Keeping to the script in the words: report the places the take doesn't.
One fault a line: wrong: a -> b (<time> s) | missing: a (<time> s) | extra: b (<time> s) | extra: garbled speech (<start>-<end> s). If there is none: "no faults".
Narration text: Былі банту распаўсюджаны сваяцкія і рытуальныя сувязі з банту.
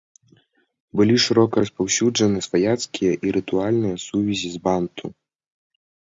wrong: банту -> шырока (1.2 s)